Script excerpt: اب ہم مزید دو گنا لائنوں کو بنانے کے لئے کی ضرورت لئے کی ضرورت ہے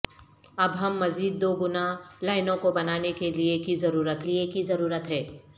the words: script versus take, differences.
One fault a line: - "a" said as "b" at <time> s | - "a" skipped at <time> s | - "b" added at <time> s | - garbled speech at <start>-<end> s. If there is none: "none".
none